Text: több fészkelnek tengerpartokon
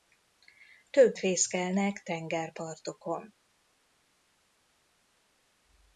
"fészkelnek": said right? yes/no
yes